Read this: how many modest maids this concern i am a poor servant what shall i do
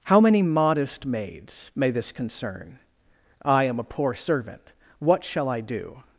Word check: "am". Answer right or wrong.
right